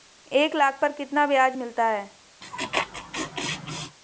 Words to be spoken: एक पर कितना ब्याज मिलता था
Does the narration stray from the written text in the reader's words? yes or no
yes